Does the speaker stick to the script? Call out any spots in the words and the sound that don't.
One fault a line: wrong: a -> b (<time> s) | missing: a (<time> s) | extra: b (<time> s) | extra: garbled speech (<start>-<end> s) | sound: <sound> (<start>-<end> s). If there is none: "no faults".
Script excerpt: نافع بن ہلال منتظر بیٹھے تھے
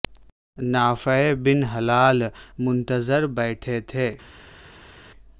no faults